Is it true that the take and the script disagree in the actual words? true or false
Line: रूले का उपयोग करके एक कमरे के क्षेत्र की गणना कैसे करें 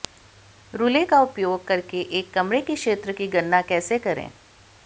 false